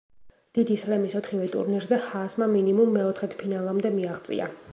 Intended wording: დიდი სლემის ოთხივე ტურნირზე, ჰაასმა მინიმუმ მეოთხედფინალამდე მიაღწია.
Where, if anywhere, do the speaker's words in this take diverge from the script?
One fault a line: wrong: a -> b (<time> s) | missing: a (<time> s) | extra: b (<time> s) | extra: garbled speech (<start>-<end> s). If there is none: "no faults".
no faults